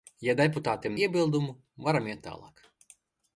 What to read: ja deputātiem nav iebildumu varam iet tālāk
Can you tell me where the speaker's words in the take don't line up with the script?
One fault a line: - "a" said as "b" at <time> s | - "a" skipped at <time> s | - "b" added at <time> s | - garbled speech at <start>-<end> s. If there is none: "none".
- "nav" skipped at 1.0 s